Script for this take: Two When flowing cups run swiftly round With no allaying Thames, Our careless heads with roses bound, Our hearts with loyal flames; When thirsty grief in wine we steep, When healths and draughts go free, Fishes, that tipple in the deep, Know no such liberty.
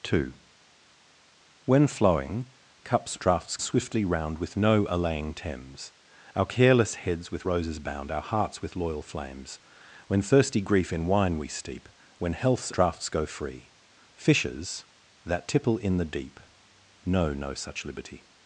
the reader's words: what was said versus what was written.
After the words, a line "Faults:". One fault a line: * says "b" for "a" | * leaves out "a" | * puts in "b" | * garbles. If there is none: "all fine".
Two When flowing cups draughts swiftly round With no allaying Thames, Our careless heads with roses bound, Our hearts with loyal flames; When thirsty grief in wine we steep, When healths draughts go free, Fishes, that tipple in the deep, Know no such liberty.
Faults:
* says "draughts" for "run"
* leaves out "and"